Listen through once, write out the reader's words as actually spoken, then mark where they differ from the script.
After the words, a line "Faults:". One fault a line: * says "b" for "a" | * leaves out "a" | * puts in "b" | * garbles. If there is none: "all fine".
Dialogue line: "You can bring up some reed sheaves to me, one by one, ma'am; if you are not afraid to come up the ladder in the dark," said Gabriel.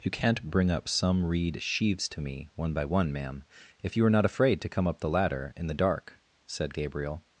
"You can't bring up some reed sheaves to me, one by one, ma'am; if you are not afraid to come up the ladder in the dark," said Gabriel.
Faults:
* says "can't" for "can"